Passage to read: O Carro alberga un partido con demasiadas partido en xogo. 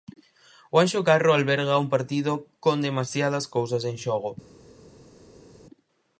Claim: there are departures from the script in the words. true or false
true